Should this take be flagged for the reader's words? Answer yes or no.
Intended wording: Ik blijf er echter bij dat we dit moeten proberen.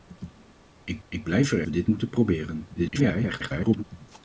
yes